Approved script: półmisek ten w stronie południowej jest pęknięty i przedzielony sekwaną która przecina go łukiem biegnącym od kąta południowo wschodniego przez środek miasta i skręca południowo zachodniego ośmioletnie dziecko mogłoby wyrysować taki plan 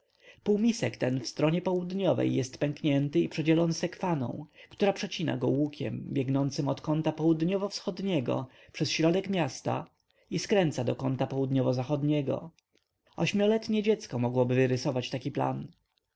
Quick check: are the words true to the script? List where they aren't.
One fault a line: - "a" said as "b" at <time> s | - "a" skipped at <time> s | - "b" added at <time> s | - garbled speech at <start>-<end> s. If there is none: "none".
- "do kąta" added at 10.8 s